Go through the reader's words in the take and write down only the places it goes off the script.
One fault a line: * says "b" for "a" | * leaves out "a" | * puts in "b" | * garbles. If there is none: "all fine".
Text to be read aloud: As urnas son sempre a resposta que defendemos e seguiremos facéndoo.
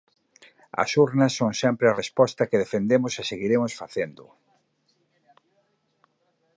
all fine